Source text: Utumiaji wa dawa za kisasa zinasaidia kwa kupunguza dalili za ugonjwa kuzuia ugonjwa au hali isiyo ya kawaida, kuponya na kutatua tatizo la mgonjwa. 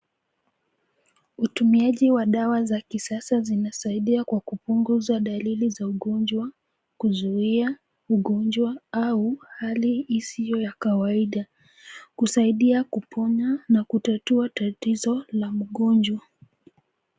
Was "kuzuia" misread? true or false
false